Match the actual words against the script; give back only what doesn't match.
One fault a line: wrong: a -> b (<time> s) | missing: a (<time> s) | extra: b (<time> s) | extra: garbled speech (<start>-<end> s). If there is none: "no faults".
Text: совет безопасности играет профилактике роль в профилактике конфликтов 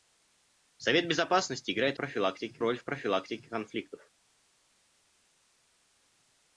no faults